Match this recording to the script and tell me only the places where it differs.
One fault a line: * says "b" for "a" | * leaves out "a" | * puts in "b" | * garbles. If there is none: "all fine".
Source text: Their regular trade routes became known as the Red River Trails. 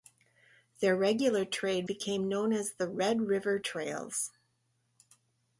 * leaves out "routes"